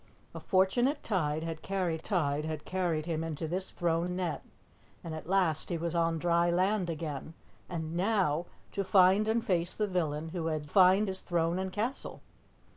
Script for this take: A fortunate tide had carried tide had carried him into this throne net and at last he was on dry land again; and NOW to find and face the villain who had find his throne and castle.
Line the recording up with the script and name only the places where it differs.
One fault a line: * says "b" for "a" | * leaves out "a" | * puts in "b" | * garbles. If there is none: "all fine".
all fine